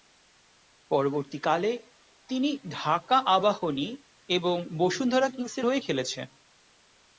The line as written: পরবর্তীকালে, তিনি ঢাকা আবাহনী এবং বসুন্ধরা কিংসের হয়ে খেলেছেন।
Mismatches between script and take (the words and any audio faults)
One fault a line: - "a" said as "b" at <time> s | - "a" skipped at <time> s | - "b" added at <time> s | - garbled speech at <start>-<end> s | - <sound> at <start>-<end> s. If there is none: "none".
none